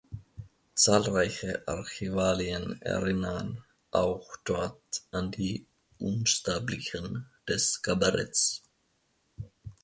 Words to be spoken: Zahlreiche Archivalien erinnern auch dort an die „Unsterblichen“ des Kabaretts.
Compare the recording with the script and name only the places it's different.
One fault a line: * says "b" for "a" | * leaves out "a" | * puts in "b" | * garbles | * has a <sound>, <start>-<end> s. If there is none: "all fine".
all fine